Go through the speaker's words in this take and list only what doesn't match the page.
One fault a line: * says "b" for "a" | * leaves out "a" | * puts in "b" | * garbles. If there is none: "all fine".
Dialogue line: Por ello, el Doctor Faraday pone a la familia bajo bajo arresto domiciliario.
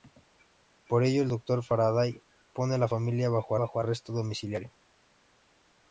all fine